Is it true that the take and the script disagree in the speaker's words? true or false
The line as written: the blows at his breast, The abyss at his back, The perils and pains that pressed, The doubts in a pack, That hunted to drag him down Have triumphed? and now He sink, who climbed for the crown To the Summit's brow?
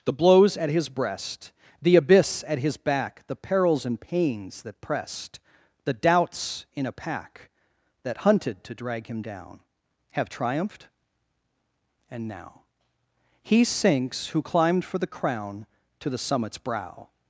true